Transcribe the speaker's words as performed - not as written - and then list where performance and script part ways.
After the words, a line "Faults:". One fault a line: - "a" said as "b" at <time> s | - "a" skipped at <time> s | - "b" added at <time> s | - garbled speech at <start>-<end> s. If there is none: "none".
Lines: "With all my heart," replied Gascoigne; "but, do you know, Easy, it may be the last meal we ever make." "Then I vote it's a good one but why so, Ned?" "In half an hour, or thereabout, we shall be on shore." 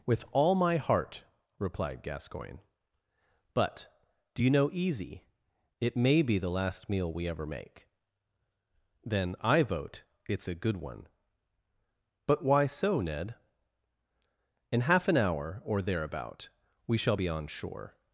"With all my heart," replied Gascoigne; "but, do you know, Easy, it may be the last meal we ever make." "Then I vote it's a good one but why so, Ned?" "In half an hour, or thereabout, we shall be on shore."
Faults:
none